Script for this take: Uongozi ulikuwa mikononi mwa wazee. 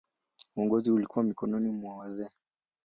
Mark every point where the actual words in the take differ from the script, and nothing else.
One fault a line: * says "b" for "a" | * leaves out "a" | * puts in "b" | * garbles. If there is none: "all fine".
all fine